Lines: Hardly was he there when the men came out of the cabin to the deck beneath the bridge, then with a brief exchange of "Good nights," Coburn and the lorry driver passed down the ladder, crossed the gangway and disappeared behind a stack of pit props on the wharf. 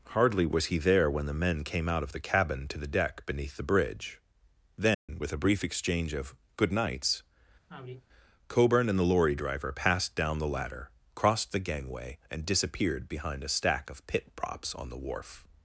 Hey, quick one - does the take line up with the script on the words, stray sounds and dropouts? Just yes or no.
no